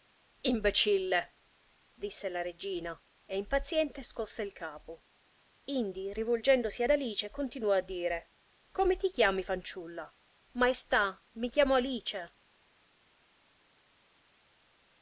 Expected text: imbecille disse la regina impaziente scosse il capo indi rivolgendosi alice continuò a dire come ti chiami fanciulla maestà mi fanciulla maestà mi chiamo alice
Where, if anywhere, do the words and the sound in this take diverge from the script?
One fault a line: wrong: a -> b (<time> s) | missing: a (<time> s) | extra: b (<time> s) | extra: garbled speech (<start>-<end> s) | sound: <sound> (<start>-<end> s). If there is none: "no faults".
extra: e (3.3 s)
extra: ad (6.8 s)
missing: fanciulla maestà mi (11.5 s)